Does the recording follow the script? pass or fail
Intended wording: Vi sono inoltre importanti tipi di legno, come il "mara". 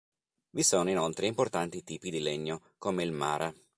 pass